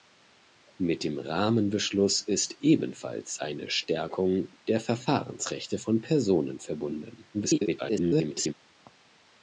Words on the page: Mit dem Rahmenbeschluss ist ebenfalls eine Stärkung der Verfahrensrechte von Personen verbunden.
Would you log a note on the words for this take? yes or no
yes